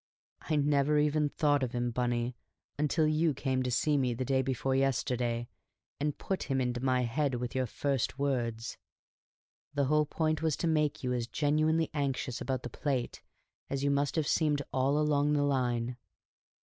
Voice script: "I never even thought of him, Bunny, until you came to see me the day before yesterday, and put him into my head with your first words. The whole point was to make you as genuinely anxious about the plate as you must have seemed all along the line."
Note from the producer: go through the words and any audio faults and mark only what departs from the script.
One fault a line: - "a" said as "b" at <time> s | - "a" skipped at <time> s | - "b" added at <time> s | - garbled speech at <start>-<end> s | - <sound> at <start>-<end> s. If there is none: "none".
none